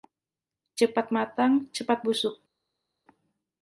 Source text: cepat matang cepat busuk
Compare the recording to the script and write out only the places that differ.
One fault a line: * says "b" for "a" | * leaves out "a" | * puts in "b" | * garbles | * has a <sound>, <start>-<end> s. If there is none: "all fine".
all fine